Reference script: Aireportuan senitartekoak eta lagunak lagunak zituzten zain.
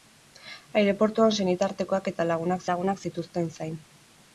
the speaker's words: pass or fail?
pass